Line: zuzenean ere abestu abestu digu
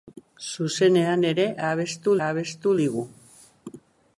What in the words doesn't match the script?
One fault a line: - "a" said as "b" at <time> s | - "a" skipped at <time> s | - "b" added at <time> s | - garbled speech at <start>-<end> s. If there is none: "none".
none